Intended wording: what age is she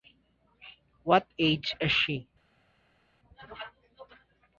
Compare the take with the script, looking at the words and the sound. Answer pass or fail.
pass